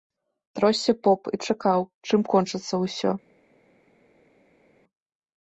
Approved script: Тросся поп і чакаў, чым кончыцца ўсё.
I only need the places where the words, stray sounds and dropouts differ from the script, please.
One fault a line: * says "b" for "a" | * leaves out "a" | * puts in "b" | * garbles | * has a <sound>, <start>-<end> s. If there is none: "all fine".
all fine